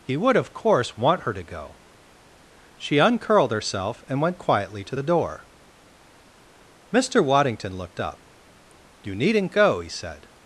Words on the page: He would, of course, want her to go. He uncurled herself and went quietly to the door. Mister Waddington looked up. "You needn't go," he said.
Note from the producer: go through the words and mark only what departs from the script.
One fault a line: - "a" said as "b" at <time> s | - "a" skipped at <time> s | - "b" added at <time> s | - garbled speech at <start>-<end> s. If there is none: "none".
- "He" said as "She" at 2.8 s